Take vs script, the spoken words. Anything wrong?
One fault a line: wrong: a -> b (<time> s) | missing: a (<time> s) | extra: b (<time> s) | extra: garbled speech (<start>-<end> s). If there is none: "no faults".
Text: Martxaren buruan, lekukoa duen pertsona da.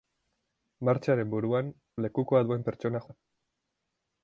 no faults